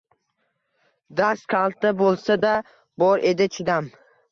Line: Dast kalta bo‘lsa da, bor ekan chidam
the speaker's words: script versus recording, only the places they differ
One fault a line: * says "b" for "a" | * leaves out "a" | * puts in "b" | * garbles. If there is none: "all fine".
* says "edi" for "ekan"